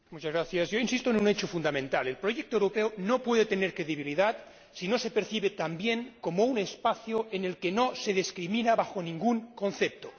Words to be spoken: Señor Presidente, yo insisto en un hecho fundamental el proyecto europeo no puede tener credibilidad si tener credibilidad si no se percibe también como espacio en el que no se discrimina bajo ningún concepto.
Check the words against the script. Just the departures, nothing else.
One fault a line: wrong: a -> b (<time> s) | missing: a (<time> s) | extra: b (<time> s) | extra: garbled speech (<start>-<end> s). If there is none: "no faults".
missing: tener credibilidad si (4.9 s)
extra: un (6.5 s)